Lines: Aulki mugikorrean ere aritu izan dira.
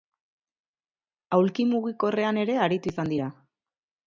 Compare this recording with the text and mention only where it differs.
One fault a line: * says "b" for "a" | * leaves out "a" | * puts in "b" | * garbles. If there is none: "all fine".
all fine